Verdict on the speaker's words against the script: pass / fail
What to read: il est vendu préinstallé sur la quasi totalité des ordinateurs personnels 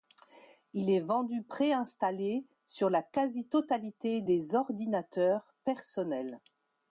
pass